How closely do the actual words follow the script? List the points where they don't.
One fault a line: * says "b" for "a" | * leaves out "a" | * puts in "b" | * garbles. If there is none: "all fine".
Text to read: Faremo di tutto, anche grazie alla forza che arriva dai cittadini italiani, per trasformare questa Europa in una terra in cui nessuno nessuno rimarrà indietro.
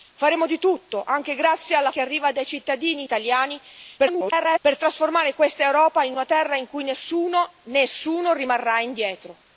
* leaves out "forza"
* garbles